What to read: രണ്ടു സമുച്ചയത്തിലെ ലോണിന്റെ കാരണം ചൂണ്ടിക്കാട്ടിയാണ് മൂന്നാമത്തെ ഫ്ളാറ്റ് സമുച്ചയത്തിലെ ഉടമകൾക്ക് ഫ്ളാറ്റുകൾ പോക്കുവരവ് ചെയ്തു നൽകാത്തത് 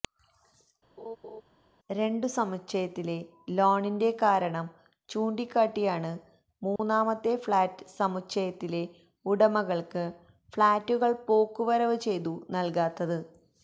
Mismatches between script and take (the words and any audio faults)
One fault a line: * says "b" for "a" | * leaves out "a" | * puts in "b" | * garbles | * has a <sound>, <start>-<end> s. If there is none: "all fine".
* has a laugh, 1.0-1.4 s
* has a dropout, 6.8-6.8 s